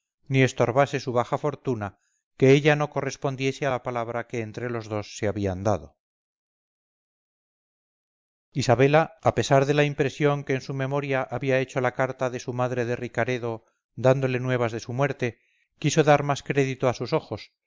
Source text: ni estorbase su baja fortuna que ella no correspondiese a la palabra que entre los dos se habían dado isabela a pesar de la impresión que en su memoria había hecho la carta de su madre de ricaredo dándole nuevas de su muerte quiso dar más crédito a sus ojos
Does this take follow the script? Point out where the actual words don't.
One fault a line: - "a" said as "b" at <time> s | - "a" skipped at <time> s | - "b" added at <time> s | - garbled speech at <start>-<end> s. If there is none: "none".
none